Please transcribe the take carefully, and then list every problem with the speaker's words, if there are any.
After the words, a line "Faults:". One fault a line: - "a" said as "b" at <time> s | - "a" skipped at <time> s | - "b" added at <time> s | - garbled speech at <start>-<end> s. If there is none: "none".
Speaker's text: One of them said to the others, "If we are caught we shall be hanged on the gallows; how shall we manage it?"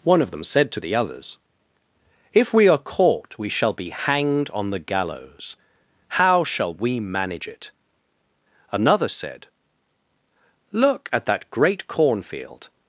One of them said to the others, "If we are caught we shall be hanged on the gallows; how shall we manage it?" Another said, "Look at that great cornfield
Faults:
- "Another said Look at that great cornfield" added at 8.7 s